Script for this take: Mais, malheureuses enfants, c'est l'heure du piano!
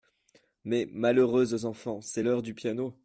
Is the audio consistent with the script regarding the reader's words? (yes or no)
yes